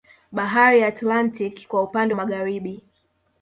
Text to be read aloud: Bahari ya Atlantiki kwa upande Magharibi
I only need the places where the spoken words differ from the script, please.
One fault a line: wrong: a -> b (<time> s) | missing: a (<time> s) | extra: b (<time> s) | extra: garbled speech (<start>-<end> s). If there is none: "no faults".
no faults